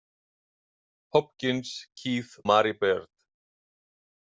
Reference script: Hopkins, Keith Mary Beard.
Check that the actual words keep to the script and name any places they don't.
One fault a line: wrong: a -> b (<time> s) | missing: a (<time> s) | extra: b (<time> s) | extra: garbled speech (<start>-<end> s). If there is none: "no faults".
no faults